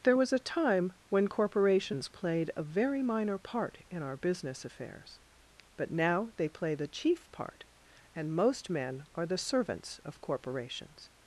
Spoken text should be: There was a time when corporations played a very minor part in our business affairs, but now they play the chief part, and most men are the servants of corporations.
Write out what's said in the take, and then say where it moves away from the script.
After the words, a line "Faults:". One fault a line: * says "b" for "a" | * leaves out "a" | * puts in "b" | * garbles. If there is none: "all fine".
There was a time when corporations played a very minor part in our business affairs, but now they play the chief part, and most men are the servants of corporations.
Faults:
all fine